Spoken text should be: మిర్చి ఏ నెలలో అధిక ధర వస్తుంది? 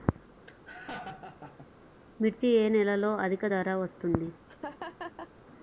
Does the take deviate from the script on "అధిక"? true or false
false